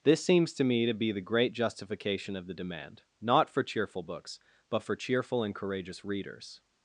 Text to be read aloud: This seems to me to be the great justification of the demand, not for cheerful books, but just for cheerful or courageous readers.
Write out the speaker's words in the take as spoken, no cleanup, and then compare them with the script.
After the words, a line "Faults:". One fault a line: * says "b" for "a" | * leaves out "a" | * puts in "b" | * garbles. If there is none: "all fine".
This seems to me to be the great justification of the demand, not for cheerful books, but for cheerful and courageous readers.
Faults:
* leaves out "just"
* says "and" for "or"